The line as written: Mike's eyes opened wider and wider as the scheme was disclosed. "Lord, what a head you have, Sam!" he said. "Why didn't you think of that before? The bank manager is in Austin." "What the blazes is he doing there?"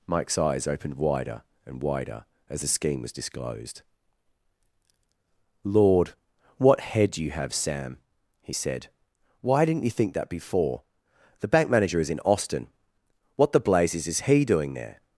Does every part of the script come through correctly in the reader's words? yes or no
no